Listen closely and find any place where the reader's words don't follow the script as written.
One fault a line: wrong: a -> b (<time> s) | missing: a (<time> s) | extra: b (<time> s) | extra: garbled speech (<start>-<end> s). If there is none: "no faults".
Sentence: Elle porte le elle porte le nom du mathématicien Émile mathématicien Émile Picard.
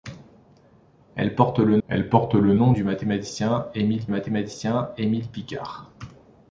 no faults